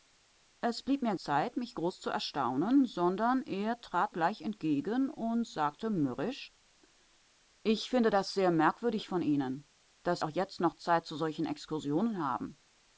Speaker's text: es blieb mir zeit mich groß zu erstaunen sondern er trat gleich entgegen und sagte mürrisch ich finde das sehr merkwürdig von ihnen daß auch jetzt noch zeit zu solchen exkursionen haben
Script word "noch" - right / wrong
right